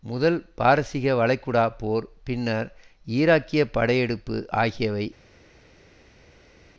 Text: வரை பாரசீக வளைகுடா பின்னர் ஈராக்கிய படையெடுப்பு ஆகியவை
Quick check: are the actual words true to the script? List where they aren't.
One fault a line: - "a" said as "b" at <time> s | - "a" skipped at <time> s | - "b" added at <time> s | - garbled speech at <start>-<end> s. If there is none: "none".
- "வரை" said as "முதல்" at 0.0 s
- "போர்" added at 1.8 s